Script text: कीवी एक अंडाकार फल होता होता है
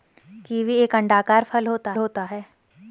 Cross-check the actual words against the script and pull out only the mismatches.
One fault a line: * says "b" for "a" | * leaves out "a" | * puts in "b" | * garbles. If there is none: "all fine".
all fine